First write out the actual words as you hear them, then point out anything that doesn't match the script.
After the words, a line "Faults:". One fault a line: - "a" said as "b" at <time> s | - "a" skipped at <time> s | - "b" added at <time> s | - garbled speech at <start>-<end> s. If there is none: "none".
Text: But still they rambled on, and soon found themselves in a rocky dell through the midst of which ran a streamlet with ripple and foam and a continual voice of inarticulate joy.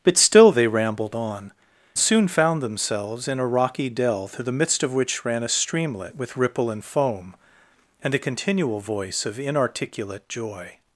But still they rambled on, soon found themselves in a rocky dell through the midst of which ran a streamlet with ripple and foam and a continual voice of inarticulate joy.
Faults:
- "and" skipped at 1.5 s